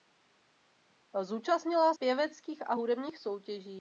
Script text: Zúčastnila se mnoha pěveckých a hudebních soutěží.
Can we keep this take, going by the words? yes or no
no